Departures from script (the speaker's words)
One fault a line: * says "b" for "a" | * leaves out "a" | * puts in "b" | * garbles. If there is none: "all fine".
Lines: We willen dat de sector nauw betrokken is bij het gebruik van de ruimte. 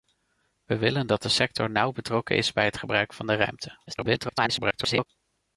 * garbles